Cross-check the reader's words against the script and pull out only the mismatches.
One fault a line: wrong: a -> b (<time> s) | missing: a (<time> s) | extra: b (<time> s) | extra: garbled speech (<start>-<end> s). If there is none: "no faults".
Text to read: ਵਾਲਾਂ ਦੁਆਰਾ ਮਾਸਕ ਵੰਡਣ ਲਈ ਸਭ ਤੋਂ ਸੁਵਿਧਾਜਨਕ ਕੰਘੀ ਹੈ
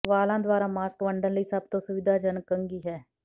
no faults